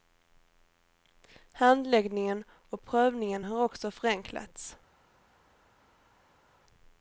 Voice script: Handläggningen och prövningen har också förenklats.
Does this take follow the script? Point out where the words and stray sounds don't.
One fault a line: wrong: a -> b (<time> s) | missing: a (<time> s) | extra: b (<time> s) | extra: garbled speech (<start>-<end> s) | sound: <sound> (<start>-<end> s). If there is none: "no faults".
no faults